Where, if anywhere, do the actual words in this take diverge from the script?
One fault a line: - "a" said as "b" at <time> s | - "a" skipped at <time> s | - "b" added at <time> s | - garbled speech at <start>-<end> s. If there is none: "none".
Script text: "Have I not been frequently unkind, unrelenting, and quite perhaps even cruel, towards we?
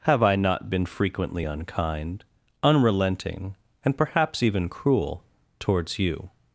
- "quite" skipped at 4.0 s
- "we" said as "you" at 6.0 s